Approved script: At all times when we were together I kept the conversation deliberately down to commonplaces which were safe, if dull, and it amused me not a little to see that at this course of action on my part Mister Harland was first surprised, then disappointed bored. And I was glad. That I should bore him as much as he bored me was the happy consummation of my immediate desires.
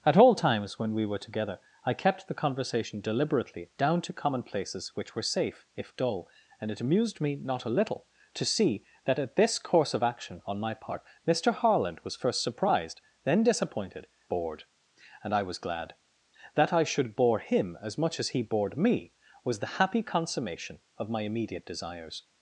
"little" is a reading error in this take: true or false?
false